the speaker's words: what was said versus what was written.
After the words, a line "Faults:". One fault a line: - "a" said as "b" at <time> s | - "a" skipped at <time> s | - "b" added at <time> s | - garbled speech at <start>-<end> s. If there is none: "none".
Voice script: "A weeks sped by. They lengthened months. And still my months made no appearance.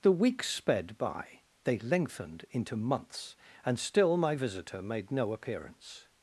"The weeks sped by. They lengthened into months. And still my visitor made no appearance.
Faults:
- "A" said as "The" at 0.0 s
- "into" added at 2.5 s
- "months" said as "visitor" at 4.3 s